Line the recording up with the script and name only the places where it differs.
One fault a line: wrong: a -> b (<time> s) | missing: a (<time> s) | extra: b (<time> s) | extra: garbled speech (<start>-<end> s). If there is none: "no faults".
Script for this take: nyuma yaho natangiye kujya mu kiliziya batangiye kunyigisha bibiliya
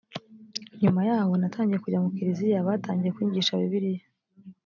no faults